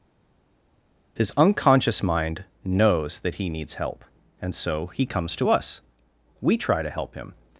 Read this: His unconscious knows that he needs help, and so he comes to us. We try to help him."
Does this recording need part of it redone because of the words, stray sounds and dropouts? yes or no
yes